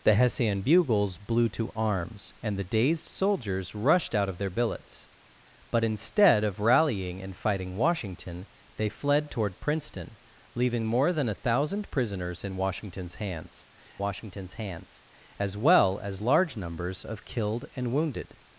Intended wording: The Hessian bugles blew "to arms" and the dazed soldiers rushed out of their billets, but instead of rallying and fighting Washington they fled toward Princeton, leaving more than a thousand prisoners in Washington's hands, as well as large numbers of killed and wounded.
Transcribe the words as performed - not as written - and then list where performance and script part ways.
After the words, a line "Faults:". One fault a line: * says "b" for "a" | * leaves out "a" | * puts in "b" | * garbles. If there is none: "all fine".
The Hessian bugles blew "to arms" and the dazed soldiers rushed out of their billets, but instead of rallying and fighting Washington they fled toward Princeton, leaving more than a thousand prisoners in Washington's hands Washington's hands, as well as large numbers of killed and wounded.
Faults:
* puts in "Washington's hands"